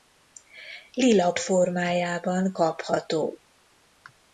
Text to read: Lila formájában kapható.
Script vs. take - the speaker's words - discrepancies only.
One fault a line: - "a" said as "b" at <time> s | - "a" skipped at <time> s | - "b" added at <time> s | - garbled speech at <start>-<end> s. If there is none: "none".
none